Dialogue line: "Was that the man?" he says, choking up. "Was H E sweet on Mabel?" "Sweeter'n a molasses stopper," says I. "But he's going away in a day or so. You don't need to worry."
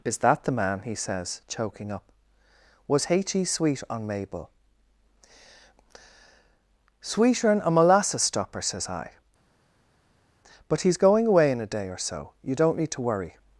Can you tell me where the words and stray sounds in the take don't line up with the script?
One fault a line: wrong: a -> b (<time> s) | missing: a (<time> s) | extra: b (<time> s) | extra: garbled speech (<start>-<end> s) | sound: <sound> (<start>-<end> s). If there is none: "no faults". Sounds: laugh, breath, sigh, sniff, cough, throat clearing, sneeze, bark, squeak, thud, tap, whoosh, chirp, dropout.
wrong: Was -> Is (0.0 s)